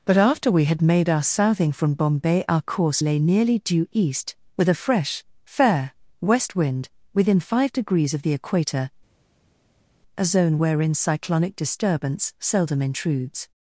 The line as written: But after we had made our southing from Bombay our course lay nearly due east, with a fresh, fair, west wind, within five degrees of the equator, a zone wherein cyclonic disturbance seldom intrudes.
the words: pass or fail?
pass